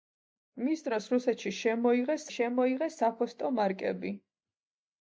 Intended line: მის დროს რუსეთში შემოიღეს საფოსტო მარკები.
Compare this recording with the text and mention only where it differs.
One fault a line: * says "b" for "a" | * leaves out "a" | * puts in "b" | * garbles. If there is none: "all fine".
* puts in "შემოიღეს"